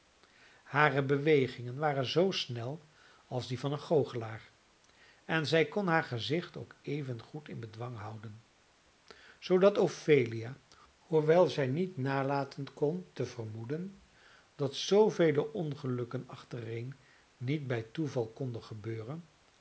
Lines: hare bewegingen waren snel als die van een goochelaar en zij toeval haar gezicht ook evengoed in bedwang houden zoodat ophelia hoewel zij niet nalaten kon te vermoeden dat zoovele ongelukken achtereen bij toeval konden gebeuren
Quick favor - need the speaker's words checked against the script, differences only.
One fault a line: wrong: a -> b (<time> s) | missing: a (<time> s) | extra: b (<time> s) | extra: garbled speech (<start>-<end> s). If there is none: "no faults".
extra: zoo (2.0 s)
wrong: toeval -> kon (5.7 s)
extra: niet (17.4 s)